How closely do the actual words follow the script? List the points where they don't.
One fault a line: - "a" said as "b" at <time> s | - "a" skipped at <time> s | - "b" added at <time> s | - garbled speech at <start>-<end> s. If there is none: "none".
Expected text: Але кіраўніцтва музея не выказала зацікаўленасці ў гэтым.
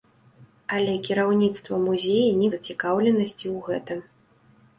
- "выказала" skipped at 2.5 s